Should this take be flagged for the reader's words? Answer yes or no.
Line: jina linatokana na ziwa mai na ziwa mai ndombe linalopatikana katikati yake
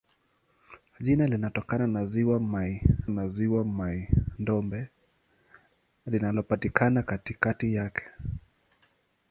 no